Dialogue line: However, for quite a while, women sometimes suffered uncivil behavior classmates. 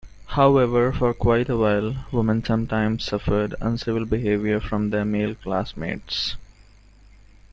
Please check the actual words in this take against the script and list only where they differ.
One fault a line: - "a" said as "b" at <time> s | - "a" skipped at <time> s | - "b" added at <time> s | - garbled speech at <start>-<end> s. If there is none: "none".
- "from their male" added at 4.6 s